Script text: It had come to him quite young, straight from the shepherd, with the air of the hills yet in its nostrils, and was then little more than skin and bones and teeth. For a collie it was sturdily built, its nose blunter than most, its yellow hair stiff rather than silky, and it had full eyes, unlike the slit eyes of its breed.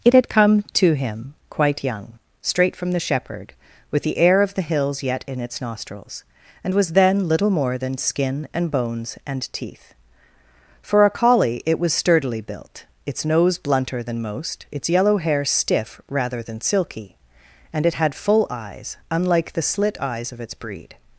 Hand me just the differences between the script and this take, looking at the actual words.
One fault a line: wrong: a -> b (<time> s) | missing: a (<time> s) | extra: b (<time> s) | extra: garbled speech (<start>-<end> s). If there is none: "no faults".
no faults